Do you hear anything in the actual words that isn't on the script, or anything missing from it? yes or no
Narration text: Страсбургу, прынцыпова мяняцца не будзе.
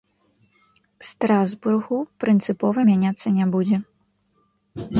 no